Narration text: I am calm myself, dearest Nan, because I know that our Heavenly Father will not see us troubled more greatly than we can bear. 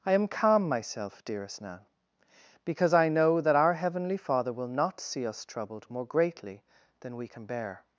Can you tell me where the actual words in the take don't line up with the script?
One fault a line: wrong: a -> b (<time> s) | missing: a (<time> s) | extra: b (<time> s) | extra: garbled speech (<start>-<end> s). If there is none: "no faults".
no faults